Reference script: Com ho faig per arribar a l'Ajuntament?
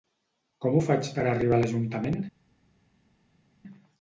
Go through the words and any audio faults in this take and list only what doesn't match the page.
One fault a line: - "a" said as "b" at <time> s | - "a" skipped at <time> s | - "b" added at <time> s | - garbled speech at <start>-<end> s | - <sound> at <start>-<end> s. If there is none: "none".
none